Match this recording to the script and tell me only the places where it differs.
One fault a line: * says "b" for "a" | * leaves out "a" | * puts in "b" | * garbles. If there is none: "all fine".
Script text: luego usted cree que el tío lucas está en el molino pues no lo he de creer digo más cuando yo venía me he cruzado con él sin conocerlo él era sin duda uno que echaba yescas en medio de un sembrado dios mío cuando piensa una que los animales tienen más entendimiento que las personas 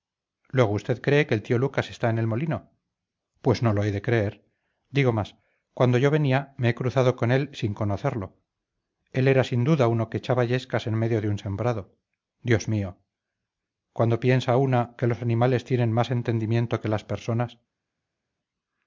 all fine